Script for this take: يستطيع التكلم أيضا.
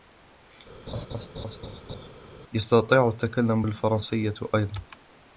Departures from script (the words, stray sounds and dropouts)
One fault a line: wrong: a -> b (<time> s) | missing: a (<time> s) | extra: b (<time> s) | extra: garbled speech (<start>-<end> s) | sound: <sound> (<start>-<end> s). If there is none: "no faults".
sound: laugh (0.9-2.1 s)
extra: بالفرنسية (3.6 s)